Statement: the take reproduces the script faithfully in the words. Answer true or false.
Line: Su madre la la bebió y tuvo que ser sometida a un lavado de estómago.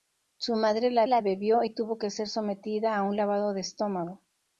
true